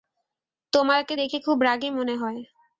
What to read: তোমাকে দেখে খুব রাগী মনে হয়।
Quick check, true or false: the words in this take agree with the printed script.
true